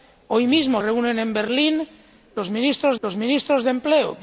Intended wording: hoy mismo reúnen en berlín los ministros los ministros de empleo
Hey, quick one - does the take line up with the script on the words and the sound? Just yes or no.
yes